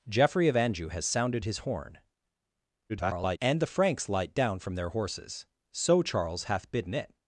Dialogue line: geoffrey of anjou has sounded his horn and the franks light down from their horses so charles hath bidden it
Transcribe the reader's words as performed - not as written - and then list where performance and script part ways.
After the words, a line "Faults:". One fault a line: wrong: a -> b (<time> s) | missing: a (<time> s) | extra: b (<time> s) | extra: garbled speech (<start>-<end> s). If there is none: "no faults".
geoffrey of anjou has sounded his horn [garbled] and the franks light down from their horses so charles hath bidden it
Faults:
extra: garbled speech (2.9-3.4 s)